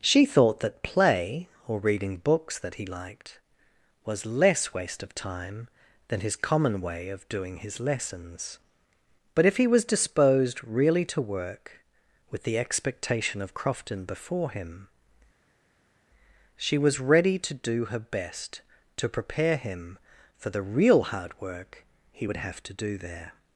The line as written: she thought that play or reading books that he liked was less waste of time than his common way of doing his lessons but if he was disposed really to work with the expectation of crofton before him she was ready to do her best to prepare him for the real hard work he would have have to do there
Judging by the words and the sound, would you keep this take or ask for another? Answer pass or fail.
fail